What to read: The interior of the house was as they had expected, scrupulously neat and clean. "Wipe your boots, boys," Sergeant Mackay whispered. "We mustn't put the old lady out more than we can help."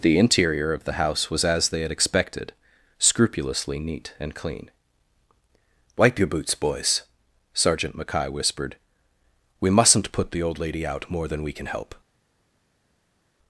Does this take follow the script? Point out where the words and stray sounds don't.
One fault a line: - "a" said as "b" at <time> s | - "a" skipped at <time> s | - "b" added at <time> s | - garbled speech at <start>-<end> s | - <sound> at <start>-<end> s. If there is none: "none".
none